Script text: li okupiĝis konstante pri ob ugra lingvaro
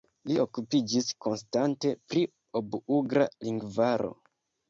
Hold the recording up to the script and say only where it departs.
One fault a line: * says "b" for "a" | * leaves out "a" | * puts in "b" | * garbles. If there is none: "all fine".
all fine